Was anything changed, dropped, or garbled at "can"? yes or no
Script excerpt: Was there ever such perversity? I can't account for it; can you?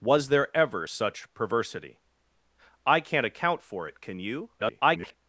no